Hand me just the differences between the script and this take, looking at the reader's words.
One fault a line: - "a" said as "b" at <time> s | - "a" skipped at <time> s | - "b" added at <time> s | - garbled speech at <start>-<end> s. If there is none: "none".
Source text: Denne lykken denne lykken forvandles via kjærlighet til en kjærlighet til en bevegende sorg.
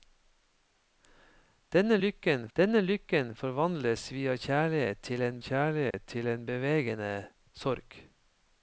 none